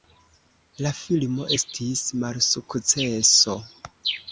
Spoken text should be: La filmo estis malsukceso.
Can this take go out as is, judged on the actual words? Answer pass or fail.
pass